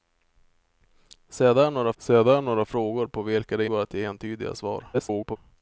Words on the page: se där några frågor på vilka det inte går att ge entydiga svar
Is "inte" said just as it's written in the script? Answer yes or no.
no